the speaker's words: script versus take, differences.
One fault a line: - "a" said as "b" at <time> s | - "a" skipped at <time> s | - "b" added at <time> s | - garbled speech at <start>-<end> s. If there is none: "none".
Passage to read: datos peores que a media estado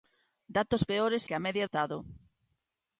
none